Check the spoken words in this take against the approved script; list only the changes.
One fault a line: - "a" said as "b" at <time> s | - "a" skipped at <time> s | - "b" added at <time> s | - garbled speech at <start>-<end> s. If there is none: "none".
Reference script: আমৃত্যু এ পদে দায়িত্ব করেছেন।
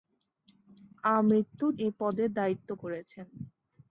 none